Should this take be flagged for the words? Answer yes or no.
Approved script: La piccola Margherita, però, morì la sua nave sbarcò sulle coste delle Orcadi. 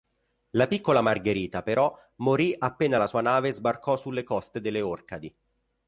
yes